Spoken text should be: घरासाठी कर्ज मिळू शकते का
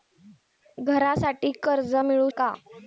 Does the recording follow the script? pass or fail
fail